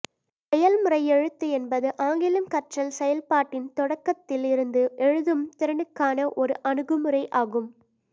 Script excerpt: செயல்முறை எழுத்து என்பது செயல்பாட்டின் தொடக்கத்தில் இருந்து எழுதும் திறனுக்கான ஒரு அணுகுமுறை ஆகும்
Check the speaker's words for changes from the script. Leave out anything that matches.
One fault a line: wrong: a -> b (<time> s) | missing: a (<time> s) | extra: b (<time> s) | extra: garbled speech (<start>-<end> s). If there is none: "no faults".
extra: ஆங்கிலம் கற்றல் (2.0 s)